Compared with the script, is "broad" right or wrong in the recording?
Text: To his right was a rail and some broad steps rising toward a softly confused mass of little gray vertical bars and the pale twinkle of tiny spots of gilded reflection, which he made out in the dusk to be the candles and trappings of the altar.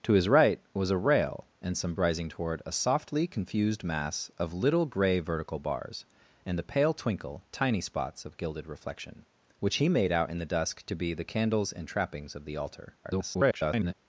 wrong